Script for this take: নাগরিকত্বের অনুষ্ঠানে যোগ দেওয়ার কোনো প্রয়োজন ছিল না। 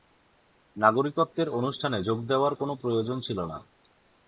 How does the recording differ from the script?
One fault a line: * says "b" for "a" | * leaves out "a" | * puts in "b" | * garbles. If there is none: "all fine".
all fine